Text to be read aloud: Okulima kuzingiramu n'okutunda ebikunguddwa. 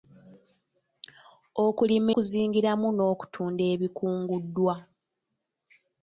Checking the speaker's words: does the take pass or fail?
pass